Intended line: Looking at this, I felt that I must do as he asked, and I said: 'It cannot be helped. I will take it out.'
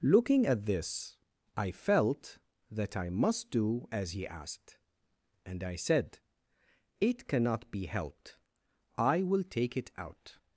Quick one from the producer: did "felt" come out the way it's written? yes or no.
yes